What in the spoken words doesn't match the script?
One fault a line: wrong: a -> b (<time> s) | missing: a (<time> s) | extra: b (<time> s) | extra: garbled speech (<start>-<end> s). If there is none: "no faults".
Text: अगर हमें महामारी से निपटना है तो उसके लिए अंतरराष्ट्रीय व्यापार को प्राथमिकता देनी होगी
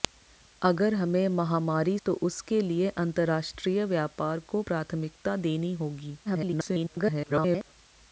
missing: से निपटना है (2.0 s)
extra: garbled speech (6.3-7.7 s)